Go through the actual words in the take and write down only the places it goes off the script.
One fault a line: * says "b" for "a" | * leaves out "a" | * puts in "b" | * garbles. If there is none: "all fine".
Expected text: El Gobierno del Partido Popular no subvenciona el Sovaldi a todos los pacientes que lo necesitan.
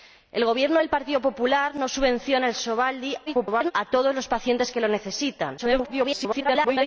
* garbles
* garbles